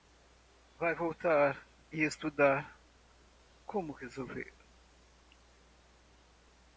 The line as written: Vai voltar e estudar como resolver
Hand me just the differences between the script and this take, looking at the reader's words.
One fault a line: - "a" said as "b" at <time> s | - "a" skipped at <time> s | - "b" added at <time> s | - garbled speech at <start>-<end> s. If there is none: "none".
none